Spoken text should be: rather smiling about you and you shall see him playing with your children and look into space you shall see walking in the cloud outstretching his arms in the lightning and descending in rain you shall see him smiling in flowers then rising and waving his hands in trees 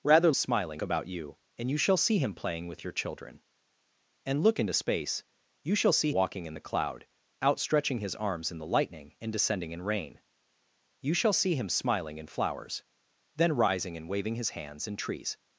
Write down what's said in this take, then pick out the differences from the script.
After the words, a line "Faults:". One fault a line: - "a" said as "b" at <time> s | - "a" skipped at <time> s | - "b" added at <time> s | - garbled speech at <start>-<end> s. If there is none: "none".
rather smiling about you and you shall see him playing with your children and look into space you shall see walking in the cloud outstretching his arms in the lightning and descending in rain you shall see him smiling in flowers then rising and waving his hands in trees
Faults:
none